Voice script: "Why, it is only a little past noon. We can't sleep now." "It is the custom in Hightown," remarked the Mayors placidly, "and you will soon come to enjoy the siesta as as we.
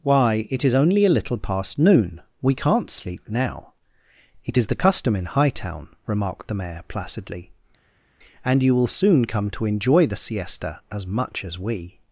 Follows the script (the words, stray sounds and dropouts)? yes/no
no